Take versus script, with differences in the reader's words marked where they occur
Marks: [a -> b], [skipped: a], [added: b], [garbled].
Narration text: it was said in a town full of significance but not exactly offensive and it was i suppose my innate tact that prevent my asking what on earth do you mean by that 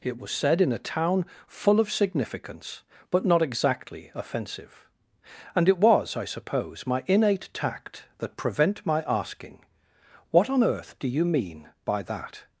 it was said in a town full of significance but not exactly offensive and it was i suppose my innate tact that prevent my asking what on earth do you mean by that